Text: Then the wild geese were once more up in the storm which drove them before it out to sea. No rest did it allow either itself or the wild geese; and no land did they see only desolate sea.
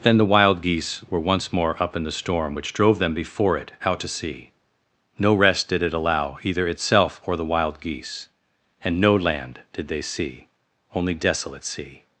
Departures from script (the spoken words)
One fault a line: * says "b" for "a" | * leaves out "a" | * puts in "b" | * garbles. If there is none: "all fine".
all fine